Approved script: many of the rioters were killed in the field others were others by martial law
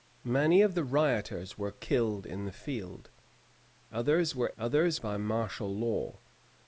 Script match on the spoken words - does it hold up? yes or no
yes